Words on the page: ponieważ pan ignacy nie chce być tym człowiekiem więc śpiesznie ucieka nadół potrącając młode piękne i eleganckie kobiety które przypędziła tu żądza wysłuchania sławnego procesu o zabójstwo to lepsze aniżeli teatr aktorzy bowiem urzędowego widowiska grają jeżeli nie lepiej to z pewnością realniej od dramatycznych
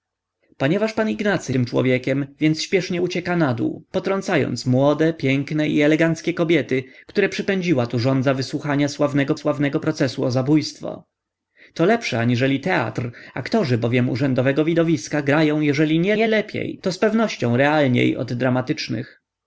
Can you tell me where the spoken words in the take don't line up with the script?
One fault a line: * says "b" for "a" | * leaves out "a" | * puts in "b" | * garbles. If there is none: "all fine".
* leaves out "nie chce być"
* puts in "sławnego"
* puts in "nie"